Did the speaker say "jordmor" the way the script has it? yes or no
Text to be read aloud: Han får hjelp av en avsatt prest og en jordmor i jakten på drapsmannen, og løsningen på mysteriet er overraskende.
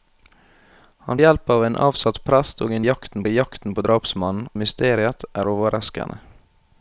no